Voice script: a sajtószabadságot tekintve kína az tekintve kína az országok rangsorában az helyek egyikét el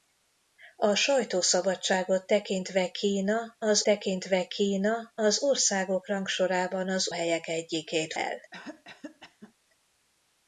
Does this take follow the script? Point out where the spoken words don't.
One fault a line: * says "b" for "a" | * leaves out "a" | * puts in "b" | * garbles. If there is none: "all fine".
all fine